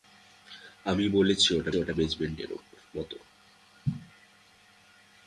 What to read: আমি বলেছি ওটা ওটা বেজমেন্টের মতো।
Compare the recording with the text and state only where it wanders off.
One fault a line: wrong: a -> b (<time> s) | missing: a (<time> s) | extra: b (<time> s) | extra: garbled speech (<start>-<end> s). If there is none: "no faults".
no faults